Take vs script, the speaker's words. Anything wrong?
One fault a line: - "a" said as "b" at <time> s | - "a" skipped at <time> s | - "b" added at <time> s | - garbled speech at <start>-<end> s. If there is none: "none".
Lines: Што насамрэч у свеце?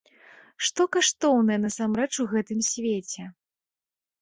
- "каштоўнае" added at 0.9 s
- "гэтым" added at 2.3 s